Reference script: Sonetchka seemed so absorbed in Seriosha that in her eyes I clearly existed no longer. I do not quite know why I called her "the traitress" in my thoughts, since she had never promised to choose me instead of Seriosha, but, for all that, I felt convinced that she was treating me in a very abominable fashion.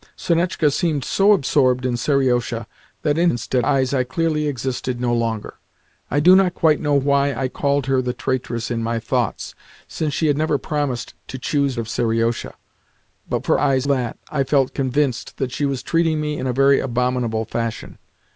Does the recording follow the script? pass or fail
fail